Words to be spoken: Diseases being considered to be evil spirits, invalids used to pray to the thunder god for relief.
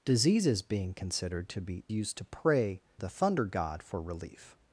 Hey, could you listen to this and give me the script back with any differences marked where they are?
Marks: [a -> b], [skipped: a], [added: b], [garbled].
Diseases being considered to be [skipped: evil spirits, invalids] used to pray [skipped: to] the thunder god for relief.